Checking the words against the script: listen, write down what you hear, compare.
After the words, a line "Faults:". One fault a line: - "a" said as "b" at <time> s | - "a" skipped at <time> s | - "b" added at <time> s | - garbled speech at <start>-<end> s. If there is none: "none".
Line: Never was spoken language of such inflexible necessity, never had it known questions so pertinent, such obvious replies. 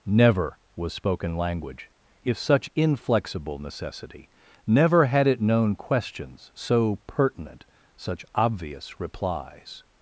Never was spoken language if such inflexible necessity, never had it known questions so pertinent, such obvious replies.
Faults:
- "of" said as "if" at 2.2 s